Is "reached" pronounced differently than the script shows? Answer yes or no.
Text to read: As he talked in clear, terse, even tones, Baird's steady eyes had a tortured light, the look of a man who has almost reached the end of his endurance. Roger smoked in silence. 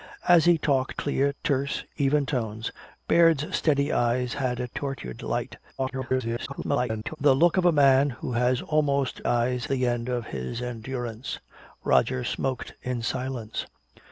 yes